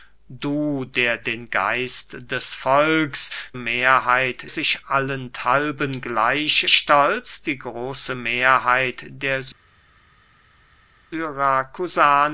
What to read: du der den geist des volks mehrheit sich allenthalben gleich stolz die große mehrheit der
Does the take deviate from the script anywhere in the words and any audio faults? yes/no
no